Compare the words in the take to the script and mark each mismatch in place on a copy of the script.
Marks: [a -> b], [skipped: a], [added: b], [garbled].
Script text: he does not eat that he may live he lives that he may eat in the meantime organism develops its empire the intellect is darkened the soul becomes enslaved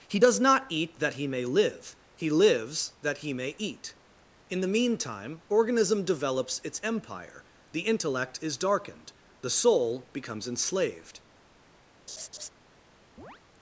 he does not eat that he may live he lives that he may eat in the meantime organism develops its empire the intellect is darkened the soul becomes enslaved